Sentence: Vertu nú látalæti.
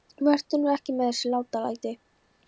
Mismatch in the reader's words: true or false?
true